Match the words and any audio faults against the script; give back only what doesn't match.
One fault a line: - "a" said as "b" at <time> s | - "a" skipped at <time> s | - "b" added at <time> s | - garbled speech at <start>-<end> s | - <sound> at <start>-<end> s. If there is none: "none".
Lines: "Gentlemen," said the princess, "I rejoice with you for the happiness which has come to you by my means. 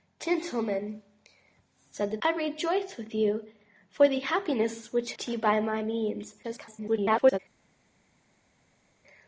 - "princess" skipped at 2.2 s
- "has come" skipped at 5.1 s
- garbled speech at 6.4-7.4 s